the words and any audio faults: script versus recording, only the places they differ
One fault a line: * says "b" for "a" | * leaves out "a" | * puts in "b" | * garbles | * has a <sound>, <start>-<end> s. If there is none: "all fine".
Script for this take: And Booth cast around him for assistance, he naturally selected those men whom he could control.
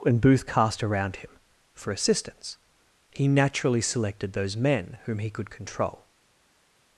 all fine